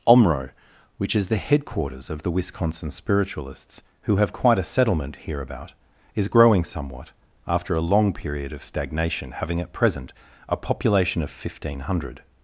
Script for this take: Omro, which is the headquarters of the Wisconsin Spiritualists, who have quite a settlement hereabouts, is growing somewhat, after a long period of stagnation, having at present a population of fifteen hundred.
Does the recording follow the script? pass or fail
fail